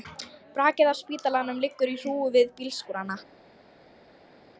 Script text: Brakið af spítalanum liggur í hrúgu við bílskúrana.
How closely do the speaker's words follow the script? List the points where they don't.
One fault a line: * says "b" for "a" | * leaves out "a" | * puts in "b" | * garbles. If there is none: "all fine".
all fine